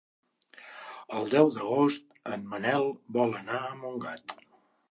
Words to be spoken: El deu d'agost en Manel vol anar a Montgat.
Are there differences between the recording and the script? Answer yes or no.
no